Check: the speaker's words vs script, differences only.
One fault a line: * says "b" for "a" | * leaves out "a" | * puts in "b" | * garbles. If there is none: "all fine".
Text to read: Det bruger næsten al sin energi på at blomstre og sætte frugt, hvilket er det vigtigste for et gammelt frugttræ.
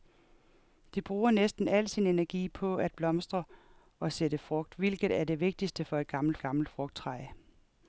* puts in "gammelt"